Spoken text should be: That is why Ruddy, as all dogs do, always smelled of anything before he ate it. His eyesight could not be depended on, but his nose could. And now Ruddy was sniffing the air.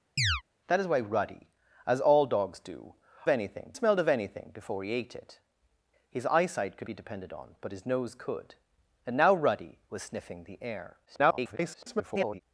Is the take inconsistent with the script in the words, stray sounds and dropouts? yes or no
yes